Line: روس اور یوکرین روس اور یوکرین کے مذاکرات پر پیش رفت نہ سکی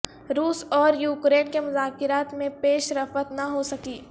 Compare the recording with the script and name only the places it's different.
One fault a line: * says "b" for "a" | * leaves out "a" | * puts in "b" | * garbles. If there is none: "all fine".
* leaves out "روس اور یوکرین"
* says "میں" for "پر"
* puts in "ہو"